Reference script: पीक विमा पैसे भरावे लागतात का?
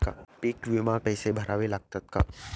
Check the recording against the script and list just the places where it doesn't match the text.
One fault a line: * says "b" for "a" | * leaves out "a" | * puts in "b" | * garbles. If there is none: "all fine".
all fine